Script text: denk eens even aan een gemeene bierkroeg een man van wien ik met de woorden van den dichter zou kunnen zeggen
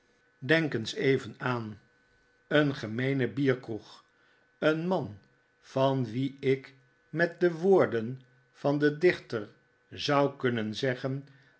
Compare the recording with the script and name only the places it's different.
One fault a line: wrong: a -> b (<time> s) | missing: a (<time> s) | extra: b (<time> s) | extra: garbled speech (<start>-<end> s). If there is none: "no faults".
no faults